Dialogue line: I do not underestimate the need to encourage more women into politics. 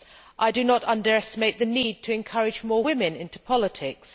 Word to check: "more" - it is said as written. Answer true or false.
true